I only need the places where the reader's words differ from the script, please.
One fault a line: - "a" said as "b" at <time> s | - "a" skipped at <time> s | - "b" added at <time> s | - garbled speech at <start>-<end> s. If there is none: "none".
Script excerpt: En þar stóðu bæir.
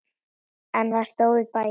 none